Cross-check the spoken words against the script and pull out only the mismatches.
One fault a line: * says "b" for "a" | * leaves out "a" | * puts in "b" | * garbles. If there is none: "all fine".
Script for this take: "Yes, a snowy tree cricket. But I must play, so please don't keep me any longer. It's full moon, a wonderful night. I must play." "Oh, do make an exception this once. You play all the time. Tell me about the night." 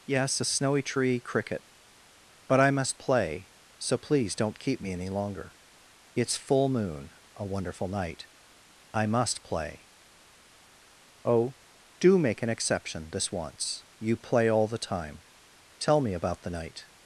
all fine